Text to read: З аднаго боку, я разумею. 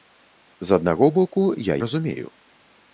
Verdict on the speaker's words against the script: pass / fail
pass